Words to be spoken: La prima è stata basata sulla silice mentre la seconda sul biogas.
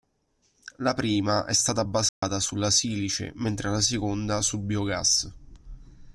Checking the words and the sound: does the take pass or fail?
fail